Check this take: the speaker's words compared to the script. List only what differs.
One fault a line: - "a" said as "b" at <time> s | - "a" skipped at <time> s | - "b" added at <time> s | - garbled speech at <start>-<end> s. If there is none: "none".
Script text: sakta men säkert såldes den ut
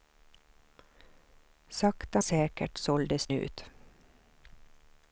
- "men" skipped at 2.2 s
- "den" skipped at 3.3 s